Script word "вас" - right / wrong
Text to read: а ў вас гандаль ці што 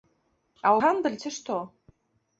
wrong